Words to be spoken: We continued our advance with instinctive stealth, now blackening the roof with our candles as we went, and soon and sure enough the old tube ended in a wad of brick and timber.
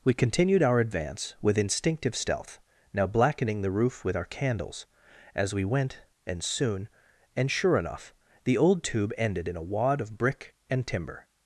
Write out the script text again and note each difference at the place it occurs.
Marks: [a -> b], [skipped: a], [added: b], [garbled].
We continued our advance with instinctive stealth, now blackening the roof with our candles as we went, and soon and sure enough the old tube ended in a wad of brick and timber.